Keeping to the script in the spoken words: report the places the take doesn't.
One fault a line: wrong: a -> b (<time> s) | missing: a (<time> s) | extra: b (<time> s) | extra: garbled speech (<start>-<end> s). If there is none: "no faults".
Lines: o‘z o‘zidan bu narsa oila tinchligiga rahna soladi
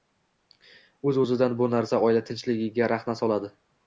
no faults